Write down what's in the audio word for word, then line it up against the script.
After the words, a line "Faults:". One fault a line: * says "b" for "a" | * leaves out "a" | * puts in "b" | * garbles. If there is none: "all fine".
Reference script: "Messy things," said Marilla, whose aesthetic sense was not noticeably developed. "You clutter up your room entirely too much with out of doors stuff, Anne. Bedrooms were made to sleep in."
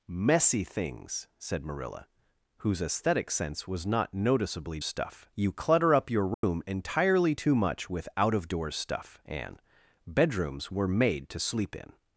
"Messy things," said Marilla, whose aesthetic sense was not noticeably stuff. "You clutter up your room entirely too much with out of doors stuff, Anne. Bedrooms were made to sleep in."
Faults:
* says "stuff" for "developed"